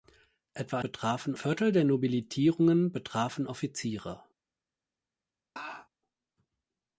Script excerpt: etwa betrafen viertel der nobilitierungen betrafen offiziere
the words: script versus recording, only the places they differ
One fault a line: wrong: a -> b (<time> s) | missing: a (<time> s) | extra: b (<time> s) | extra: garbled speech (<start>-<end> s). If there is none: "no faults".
no faults